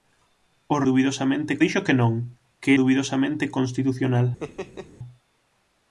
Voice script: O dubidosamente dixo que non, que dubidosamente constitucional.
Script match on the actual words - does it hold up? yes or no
yes